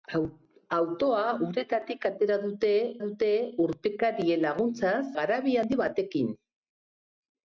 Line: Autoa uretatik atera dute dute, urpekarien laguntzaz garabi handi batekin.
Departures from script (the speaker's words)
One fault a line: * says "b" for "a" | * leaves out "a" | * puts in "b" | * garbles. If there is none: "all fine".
all fine